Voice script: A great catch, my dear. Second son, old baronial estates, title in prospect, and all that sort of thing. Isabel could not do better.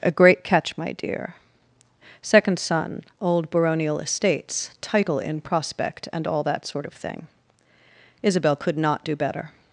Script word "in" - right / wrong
right